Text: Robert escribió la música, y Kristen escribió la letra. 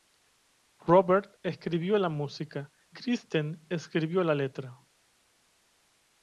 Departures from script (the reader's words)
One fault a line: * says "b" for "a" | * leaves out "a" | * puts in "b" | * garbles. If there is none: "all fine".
* leaves out "y"